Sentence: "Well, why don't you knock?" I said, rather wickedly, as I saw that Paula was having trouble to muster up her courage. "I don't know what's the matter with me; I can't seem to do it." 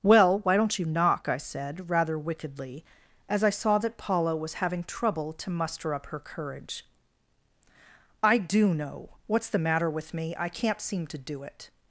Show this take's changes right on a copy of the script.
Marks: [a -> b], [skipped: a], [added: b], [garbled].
"Well, why don't you knock?" I said, rather wickedly, as I saw that Paula was having trouble to muster up her courage. "I [don't -> do] know what's the matter with me; I can't seem to do it."